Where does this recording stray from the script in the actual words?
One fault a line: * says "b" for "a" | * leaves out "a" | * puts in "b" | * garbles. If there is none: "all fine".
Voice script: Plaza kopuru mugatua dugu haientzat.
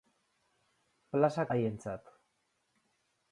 * leaves out "kopuru mugatua dugu"